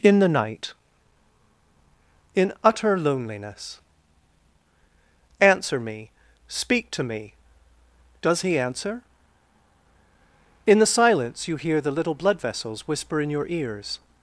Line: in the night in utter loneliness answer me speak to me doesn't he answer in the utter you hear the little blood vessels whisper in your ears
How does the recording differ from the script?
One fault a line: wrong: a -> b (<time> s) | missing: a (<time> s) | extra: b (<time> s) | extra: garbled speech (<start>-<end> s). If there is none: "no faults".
wrong: doesn't -> does (8.2 s)
wrong: utter -> silence (10.9 s)